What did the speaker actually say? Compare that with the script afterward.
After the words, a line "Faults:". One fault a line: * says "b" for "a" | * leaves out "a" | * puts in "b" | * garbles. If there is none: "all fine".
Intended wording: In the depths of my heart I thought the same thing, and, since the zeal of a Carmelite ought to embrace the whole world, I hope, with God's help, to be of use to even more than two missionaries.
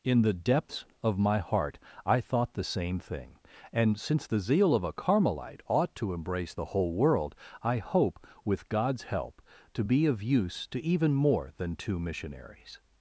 In the depths of my heart I thought the same thing, and, since the zeal of a Carmelite ought to embrace the whole world, I hope, with God's help, to be of use to even more than two missionaries.
Faults:
all fine